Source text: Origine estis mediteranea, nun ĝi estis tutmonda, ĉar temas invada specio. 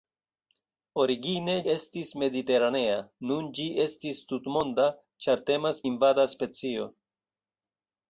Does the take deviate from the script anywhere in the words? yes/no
no